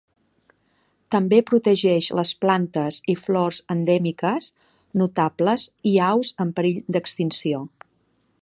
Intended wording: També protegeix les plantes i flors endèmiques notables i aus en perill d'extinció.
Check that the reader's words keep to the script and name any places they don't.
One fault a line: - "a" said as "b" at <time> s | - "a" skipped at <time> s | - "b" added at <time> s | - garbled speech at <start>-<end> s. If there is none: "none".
none